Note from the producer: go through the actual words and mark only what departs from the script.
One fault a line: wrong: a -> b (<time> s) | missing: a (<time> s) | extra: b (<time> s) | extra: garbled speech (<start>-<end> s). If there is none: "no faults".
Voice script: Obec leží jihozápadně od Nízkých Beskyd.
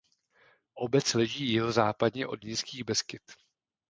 no faults